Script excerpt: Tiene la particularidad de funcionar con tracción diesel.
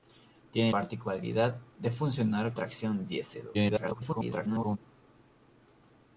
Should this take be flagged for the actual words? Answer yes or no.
yes